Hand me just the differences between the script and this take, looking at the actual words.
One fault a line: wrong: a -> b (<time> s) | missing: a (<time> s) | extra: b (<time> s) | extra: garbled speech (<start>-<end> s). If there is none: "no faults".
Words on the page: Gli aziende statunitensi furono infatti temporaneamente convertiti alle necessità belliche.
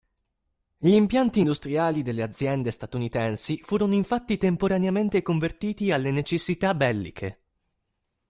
extra: impianti industriali delle (0.9 s)